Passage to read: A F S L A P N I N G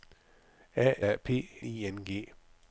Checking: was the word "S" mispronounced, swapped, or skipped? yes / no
yes